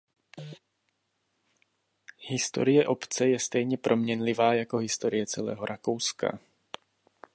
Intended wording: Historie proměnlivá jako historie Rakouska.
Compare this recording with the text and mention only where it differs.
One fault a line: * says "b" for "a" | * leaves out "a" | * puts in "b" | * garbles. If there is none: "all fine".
* puts in "obce je stejně"
* puts in "celého"